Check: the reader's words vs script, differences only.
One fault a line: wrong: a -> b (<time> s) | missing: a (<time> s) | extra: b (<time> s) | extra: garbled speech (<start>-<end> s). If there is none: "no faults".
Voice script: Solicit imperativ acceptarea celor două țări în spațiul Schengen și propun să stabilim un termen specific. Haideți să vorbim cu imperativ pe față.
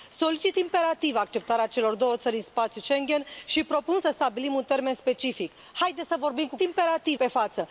no faults